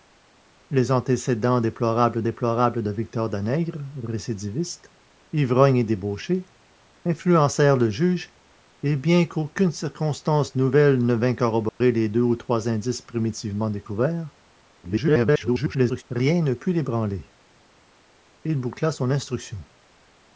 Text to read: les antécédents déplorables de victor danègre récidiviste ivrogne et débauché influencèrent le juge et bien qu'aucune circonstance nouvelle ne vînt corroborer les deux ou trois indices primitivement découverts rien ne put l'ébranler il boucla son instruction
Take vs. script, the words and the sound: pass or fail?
fail